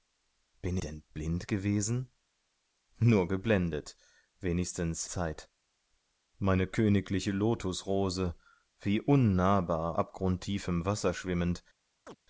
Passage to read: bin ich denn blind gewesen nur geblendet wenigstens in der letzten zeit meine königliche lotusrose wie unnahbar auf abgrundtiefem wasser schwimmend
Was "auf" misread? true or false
true